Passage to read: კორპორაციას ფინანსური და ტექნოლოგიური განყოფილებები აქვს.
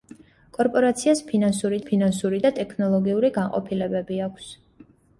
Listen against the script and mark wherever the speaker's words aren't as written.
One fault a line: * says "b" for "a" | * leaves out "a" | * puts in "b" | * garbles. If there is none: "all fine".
* puts in "ფინანსური"